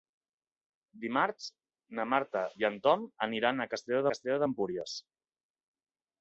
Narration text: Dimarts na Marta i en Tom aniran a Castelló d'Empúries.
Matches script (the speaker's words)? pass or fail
fail